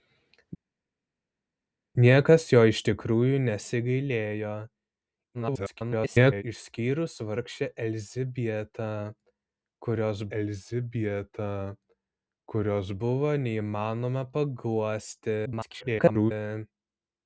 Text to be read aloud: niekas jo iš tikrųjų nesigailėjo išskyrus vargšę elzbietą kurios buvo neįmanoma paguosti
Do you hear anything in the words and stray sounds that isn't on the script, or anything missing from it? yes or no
yes